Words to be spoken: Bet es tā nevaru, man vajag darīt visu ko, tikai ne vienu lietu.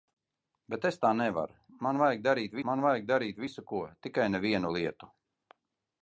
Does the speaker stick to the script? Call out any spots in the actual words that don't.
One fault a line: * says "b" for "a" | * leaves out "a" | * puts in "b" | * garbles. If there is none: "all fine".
* puts in "man vajag darīt"